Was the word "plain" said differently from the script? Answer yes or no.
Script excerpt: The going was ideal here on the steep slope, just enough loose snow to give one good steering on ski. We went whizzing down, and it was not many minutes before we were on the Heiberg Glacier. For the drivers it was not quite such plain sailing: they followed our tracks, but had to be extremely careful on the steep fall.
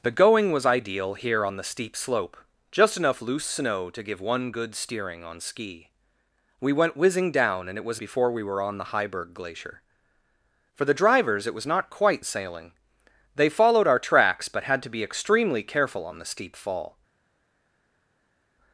yes